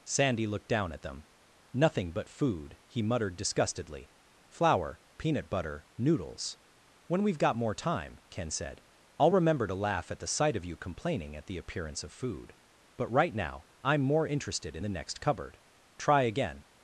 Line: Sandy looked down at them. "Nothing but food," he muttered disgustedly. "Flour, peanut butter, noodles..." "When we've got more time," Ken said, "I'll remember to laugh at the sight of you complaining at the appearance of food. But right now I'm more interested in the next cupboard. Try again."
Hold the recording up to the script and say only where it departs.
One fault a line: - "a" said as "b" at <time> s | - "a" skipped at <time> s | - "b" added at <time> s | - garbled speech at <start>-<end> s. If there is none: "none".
none